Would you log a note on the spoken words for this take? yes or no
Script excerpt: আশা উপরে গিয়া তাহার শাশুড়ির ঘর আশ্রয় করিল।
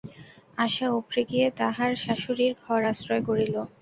no